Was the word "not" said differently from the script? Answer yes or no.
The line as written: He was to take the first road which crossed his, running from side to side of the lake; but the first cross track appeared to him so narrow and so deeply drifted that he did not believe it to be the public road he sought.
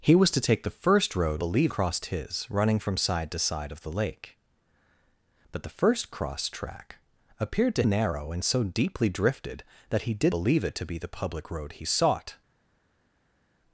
yes